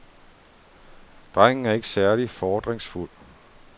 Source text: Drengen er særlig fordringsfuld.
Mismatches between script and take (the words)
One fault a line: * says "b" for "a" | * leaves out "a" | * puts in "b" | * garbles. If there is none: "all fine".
* puts in "ikke"